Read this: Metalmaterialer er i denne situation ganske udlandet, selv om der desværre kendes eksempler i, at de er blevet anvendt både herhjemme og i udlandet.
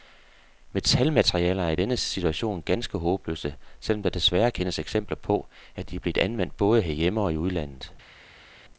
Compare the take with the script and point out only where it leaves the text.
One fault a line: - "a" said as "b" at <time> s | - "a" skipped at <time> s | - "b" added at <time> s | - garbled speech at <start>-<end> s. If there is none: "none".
- "udlandet" said as "håbløse" at 3.0 s
- "i" said as "på" at 5.2 s